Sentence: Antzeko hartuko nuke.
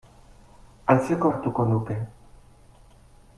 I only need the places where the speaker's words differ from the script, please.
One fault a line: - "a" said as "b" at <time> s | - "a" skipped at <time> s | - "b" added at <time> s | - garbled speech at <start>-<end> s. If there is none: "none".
none